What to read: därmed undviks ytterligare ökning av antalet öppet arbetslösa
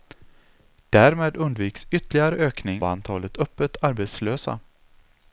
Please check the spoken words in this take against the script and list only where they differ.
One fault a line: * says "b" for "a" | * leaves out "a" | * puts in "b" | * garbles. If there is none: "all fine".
* leaves out "av"